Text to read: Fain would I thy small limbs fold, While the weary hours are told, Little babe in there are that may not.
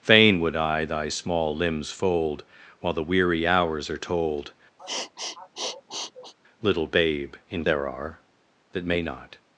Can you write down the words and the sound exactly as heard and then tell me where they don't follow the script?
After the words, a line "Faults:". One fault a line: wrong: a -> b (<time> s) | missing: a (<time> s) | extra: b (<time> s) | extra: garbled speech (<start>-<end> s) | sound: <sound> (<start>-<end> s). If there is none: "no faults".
Fain would I thy small limbs fold, While the weary hours are told, Little babe in there are that may not.
Faults:
sound: sniff (4.8-6.3 s)